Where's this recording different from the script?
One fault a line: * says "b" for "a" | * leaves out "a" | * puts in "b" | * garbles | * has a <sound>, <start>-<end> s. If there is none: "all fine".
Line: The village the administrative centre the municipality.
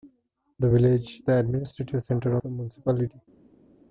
all fine